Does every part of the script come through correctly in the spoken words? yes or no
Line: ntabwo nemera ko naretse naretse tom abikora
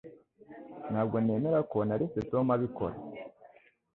no